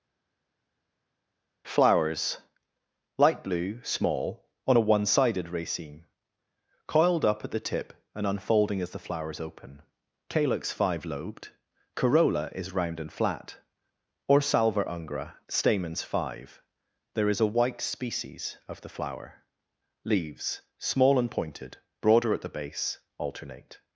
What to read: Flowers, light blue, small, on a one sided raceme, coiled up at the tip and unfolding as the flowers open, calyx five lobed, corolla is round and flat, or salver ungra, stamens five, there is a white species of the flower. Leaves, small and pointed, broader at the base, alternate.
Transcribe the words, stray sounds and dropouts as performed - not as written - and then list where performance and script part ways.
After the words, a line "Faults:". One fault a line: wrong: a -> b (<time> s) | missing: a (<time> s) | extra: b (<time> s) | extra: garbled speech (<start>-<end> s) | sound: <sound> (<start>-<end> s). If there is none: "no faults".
Flowers, light blue, small, on a one sided raceme, coiled up at the tip and unfolding as the flowers open, calyx five lobed, corolla is round and flat, or salver ungra, stamens five, there is a white species of the flower. Leaves, small and pointed, broader at the base, alternate.
Faults:
no faults